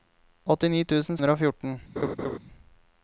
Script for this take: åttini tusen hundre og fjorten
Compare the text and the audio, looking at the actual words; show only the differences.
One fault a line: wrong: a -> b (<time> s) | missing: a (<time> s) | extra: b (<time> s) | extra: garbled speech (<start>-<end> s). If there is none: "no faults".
no faults